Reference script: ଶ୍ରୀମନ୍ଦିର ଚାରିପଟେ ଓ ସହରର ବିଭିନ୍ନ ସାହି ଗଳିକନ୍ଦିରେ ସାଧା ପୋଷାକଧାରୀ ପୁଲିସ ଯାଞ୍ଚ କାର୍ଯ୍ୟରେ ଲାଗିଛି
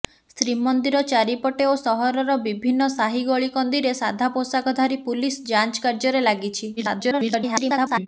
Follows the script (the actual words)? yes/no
no